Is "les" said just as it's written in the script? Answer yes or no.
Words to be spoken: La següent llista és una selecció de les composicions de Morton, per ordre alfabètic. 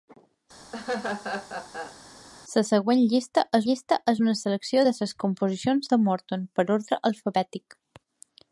yes